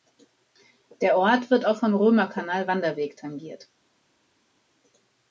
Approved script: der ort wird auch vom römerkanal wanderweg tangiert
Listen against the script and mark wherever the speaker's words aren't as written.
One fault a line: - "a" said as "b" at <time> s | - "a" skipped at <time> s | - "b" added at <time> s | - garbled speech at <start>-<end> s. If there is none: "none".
none